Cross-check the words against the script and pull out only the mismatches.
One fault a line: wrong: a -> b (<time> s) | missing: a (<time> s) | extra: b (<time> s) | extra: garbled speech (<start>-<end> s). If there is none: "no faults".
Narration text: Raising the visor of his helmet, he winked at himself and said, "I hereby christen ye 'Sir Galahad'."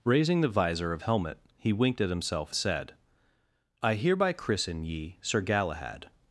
missing: his (1.0 s)
missing: and (2.5 s)